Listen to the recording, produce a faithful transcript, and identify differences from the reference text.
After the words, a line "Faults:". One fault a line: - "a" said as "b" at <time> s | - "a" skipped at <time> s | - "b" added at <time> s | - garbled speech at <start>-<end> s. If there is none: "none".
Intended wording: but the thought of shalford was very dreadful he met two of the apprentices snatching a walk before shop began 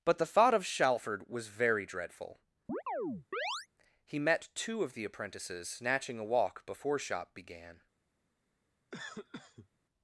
but the thought of shalford was very dreadful he met two of the apprentices snatching a walk before shop began
Faults:
none